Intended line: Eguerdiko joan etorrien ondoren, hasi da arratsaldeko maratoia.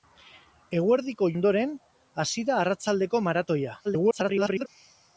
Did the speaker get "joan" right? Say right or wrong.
wrong